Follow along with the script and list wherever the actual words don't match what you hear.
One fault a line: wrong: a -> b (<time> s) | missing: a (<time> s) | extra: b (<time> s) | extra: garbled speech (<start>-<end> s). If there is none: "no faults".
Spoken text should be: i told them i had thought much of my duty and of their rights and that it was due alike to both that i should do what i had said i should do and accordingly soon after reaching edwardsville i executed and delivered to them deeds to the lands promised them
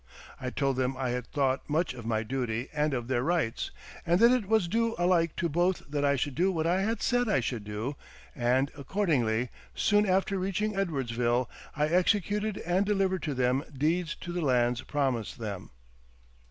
no faults